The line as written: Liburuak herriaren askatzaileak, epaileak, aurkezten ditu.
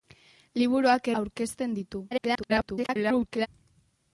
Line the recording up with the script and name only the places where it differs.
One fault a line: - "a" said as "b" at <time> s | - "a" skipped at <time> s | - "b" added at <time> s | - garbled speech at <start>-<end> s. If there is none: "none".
- "herriaren askatzaileak epaileak" skipped at 1.1 s
- garbled speech at 2.1-3.5 s